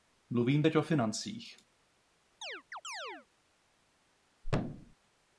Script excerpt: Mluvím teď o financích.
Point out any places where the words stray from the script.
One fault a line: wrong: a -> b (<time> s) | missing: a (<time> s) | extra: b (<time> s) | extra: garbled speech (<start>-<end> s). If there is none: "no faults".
no faults